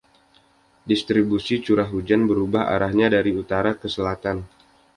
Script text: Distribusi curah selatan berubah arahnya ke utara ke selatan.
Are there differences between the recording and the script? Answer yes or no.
yes